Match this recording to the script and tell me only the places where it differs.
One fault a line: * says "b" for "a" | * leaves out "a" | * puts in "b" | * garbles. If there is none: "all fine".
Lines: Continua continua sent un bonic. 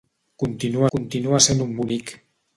all fine